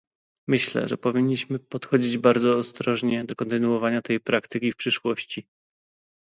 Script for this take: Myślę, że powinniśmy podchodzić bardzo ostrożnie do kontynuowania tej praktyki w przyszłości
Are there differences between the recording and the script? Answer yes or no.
no